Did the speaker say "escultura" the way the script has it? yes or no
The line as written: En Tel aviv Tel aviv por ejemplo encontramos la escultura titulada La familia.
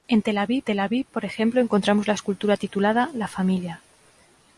yes